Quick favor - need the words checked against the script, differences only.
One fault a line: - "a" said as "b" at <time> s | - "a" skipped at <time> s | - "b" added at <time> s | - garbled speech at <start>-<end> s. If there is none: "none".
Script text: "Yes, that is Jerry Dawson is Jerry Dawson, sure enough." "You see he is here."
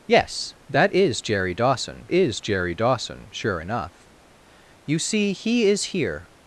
none